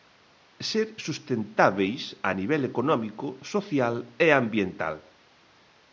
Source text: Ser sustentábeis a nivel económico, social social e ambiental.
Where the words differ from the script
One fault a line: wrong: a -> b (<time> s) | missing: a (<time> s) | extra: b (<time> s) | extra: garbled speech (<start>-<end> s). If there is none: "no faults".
missing: social (3.9 s)